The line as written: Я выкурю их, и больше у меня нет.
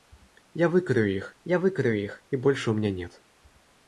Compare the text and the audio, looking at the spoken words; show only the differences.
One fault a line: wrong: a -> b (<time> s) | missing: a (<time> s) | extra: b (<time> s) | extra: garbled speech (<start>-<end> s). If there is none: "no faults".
extra: я выкурю их (1.5 s)